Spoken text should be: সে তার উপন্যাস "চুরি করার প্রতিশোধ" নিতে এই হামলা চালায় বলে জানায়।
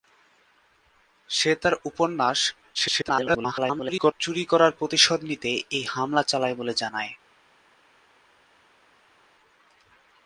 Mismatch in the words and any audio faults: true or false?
true